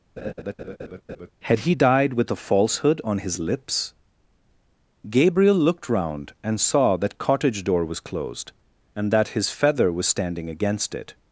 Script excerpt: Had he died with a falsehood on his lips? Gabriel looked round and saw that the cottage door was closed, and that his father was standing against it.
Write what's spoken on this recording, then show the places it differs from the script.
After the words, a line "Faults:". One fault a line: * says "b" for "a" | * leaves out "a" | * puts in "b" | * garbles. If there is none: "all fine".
Had he died with a falsehood on his lips? Gabriel looked round and saw that cottage door was closed, and that his feather was standing against it.
Faults:
* leaves out "the"
* says "feather" for "father"